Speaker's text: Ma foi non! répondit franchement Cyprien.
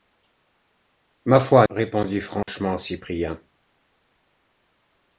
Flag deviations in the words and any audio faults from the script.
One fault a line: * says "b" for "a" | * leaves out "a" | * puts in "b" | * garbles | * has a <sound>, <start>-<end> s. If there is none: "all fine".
* leaves out "non"
* has a dropout, 2.4-2.5 s